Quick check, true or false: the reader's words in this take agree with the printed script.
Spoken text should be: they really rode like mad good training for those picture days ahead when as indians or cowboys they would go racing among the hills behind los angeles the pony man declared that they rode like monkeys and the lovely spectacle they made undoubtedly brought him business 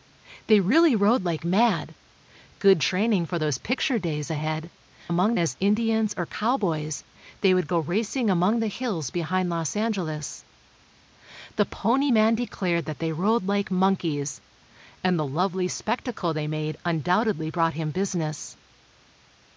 false